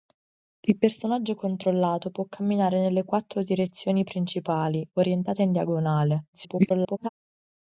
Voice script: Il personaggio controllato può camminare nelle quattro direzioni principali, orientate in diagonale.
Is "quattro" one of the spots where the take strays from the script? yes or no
no